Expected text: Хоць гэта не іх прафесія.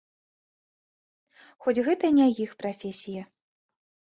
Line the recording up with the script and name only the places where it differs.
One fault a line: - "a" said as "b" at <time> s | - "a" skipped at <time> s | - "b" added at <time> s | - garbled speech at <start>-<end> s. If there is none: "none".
none